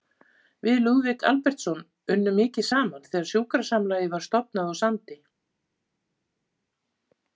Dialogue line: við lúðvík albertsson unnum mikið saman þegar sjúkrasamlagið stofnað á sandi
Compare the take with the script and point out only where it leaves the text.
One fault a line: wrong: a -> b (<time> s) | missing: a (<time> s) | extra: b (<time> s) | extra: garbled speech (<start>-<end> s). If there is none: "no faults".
extra: var (4.2 s)